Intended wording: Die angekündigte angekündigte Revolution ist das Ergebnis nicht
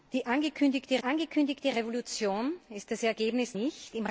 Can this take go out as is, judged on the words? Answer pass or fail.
pass